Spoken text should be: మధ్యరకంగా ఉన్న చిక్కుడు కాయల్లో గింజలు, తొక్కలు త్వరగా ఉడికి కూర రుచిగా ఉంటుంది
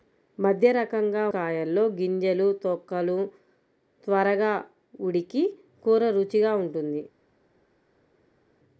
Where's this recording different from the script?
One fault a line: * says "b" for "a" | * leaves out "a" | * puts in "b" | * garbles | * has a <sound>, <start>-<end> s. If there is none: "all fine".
* leaves out "ఉన్న చిక్కుడు"